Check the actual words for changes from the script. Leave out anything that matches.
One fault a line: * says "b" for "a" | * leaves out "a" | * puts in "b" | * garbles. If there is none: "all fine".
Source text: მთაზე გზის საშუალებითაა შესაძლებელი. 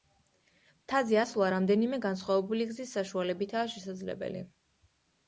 * puts in "ასვლა რამდენიმე განსხვავებული"